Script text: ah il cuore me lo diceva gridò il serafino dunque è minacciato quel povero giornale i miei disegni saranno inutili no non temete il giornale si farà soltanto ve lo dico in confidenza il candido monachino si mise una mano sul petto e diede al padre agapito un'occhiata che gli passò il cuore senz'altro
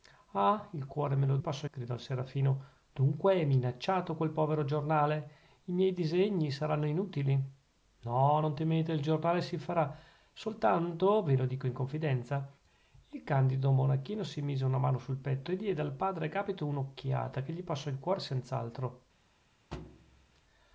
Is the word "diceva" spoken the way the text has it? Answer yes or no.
no